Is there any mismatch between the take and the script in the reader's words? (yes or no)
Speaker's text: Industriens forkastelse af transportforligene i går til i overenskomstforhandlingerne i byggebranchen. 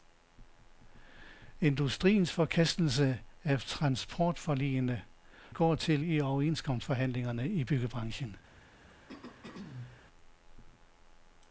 no